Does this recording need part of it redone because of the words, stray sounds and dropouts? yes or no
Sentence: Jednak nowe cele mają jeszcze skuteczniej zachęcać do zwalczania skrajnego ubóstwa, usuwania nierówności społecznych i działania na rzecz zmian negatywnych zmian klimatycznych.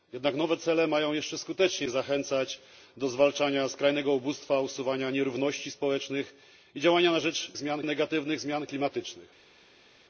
no